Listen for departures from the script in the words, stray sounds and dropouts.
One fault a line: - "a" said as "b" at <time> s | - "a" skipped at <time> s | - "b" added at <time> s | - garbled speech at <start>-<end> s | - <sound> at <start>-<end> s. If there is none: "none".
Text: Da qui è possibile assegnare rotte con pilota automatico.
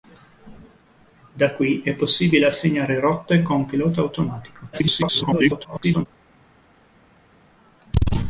- garbled speech at 4.7-6.1 s